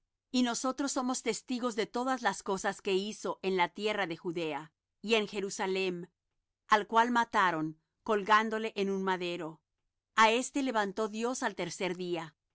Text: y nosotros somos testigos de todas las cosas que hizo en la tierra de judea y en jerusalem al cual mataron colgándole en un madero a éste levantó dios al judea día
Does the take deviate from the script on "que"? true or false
false